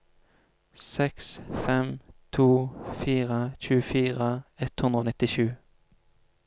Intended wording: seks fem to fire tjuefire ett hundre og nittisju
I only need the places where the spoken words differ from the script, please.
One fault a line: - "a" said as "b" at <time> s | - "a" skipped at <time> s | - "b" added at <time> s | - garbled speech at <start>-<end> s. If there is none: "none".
none